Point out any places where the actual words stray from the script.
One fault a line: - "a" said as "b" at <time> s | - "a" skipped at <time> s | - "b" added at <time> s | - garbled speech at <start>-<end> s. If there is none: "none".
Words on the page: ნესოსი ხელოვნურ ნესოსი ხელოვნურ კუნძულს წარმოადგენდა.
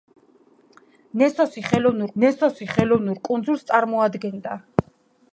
none